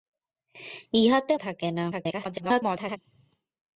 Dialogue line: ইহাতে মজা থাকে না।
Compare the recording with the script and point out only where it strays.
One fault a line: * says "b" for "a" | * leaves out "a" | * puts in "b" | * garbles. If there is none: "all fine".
* leaves out "মজা"
* garbles